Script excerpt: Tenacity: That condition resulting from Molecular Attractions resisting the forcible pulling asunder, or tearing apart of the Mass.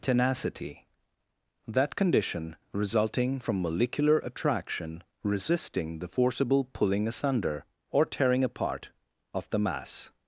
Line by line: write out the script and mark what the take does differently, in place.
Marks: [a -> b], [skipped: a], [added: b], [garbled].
Tenacity: That condition resulting from Molecular [Attractions -> Attraction] resisting the forcible pulling asunder, or tearing apart of the Mass.